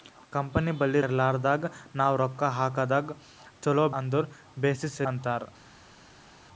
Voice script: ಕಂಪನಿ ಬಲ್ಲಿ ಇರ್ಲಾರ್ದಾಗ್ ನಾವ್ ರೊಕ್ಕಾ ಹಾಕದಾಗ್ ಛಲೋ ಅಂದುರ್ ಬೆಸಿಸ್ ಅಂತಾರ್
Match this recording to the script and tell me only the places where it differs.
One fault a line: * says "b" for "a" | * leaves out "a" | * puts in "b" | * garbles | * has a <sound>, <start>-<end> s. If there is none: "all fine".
all fine